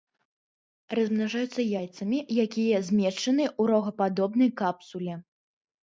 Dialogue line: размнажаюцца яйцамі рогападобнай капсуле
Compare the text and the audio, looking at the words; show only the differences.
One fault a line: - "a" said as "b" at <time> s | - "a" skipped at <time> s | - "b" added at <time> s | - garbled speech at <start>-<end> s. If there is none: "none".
- "якія змешчаны ў" added at 2.4 s